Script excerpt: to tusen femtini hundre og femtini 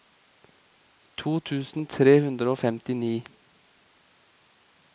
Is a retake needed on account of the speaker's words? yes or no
yes